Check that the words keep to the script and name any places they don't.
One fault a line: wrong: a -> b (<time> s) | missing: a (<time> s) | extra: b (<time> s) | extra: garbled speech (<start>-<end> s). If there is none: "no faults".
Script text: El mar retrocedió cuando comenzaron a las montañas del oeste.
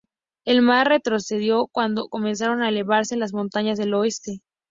extra: elevarse (2.7 s)